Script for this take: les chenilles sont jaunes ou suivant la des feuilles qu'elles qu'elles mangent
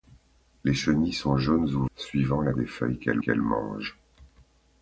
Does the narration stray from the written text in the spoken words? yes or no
no